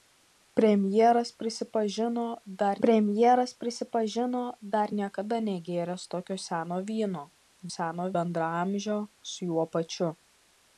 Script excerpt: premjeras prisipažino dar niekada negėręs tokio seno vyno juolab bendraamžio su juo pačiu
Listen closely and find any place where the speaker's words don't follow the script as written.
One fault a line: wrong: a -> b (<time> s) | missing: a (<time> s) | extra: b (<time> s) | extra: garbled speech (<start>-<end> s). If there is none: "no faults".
extra: premjeras prisipažino dar (2.8 s)
wrong: juolab -> seno (7.8 s)